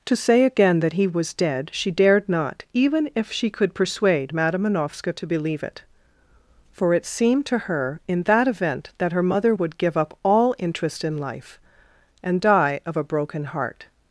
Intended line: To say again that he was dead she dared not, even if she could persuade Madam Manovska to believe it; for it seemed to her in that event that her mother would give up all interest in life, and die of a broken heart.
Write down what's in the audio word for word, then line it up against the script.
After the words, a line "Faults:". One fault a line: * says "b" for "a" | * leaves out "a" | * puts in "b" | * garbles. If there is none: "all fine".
To say again that he was dead she dared not, even if she could persuade Madam Manovska to believe it; for it seemed to her in that event that her mother would give up all interest in life, and die of a broken heart.
Faults:
all fine